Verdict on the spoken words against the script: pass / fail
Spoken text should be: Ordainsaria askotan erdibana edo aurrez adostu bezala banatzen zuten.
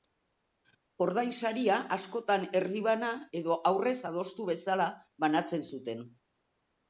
pass